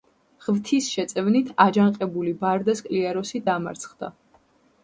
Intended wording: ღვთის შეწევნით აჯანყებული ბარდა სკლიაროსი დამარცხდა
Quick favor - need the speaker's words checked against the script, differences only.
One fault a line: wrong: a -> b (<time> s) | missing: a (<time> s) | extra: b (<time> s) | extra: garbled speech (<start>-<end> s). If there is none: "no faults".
no faults